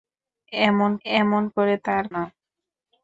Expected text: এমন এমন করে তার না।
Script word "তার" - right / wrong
right